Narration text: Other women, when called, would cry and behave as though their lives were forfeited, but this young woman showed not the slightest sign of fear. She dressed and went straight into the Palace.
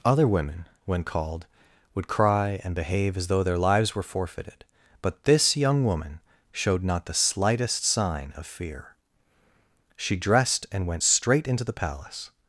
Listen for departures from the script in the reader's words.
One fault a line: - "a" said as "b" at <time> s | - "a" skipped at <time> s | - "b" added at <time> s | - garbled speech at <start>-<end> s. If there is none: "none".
none